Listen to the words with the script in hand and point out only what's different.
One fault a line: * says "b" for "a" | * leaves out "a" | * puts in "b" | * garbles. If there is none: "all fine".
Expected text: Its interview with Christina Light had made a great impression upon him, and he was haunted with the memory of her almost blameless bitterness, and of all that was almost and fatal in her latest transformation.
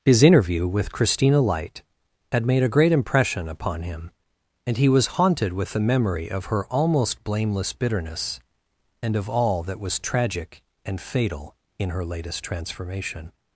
* says "His" for "Its"
* says "tragic" for "almost"